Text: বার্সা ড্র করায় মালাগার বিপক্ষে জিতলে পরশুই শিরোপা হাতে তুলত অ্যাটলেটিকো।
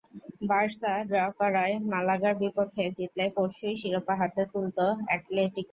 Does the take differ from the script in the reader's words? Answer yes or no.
no